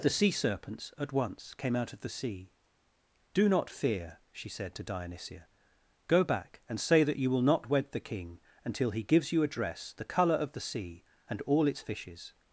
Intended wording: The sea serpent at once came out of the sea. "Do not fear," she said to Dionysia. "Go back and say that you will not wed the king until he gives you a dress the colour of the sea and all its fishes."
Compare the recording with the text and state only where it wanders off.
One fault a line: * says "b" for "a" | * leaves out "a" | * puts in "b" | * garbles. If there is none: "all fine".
* says "serpents" for "serpent"